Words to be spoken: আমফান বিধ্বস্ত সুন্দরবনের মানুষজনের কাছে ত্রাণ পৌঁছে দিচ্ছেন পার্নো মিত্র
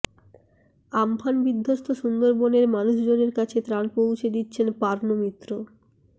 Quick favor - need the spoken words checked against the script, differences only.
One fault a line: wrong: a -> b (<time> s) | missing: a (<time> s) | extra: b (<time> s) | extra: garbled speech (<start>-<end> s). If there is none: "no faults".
no faults